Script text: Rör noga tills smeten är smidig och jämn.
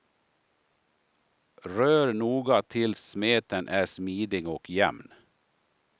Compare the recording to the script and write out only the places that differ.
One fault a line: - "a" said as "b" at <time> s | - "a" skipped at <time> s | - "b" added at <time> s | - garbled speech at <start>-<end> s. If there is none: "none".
none